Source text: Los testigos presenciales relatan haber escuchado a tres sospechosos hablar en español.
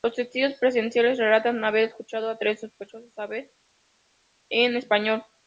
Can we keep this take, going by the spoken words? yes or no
yes